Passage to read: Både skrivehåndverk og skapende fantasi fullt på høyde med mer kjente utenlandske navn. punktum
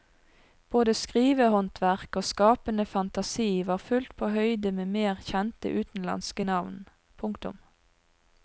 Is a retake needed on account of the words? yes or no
yes